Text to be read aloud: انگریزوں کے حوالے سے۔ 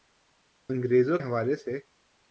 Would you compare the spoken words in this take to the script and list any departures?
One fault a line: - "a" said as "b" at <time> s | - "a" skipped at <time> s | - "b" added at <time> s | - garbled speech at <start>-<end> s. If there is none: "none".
- "کے" skipped at 1.2 s